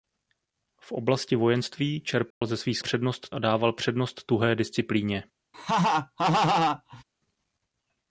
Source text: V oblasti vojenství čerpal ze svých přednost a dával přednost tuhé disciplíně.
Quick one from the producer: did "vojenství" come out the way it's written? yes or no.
yes